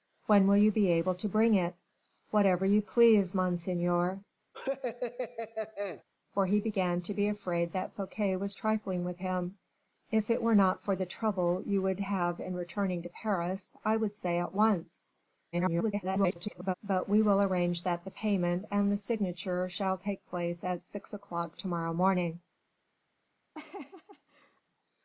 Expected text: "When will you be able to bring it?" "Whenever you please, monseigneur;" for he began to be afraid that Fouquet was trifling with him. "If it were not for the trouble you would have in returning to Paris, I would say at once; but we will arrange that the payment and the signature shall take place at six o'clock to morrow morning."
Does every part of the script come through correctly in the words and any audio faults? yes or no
no